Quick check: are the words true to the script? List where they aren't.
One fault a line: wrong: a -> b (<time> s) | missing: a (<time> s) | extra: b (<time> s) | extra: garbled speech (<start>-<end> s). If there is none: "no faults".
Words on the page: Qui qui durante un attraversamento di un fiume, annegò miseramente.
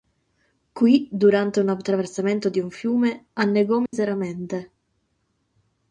missing: qui (1.1 s)